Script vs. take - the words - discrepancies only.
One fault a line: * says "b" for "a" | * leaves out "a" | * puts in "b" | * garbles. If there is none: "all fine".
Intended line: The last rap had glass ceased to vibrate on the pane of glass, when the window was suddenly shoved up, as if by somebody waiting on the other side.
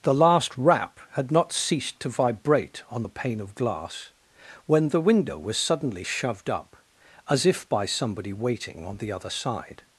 * says "not" for "glass"